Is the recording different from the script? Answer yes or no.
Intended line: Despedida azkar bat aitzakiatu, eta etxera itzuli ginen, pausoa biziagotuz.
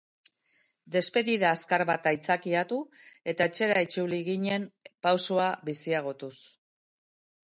no